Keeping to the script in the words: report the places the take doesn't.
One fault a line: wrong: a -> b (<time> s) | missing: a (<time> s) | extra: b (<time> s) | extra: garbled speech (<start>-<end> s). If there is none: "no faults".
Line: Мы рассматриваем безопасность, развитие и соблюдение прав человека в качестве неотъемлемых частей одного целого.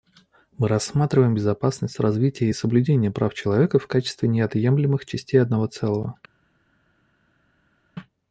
no faults